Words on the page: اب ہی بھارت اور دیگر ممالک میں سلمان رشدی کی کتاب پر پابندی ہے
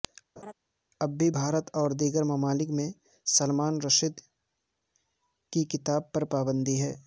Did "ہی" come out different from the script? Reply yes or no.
yes